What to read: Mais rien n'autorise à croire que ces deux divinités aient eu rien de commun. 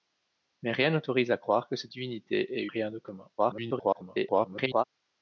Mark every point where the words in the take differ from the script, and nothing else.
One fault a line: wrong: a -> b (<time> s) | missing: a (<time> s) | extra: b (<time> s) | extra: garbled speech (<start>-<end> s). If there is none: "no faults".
missing: deux (1.9 s)
missing: eu (2.7 s)
extra: garbled speech (3.4-4.8 s)